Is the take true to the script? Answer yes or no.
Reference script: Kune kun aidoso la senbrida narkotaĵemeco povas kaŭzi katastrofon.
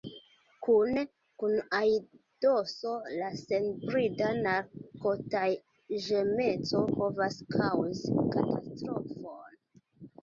yes